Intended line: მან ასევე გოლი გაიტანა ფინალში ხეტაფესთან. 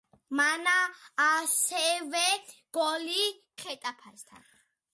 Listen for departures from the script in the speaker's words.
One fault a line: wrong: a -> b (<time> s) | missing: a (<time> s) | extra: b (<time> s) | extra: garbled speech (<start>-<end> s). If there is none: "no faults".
missing: გაიტანა ფინალში (3.2 s)